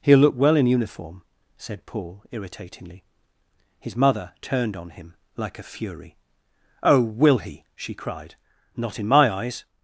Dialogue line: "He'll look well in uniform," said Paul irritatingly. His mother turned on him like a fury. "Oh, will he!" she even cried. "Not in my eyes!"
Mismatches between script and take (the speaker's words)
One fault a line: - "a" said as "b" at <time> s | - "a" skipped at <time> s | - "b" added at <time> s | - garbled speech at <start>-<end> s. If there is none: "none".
- "even" skipped at 7.9 s